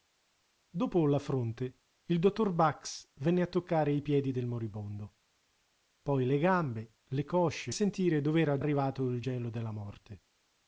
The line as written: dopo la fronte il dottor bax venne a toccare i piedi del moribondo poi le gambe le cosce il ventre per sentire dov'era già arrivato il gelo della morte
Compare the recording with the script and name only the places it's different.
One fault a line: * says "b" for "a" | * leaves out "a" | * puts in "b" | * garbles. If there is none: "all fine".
* leaves out "il ventre per"
* leaves out "già"